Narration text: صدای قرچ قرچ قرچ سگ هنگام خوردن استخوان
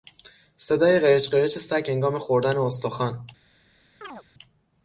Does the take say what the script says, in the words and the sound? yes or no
no